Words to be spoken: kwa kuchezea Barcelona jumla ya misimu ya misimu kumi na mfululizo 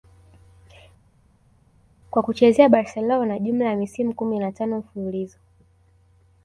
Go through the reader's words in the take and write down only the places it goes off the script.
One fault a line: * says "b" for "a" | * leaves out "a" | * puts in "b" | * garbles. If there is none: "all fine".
* leaves out "ya misimu"
* puts in "tano"